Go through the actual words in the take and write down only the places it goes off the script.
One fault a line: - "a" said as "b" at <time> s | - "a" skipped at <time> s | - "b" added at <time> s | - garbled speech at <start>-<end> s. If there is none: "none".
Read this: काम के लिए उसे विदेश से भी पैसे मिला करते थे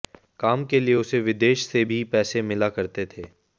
none